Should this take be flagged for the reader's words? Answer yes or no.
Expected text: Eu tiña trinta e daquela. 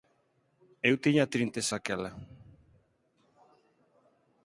no